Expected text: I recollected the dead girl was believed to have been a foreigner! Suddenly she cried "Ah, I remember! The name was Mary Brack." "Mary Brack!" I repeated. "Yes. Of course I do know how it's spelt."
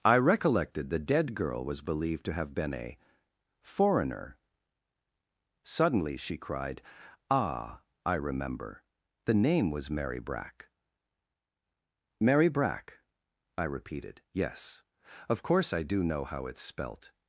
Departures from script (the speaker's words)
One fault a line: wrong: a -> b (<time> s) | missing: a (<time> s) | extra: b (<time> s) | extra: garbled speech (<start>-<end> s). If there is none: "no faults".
no faults